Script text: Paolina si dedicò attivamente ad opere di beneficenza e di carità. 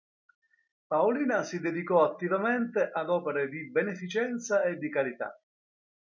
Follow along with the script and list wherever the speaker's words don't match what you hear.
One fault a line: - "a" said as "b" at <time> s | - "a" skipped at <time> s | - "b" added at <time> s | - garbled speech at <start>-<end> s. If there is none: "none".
none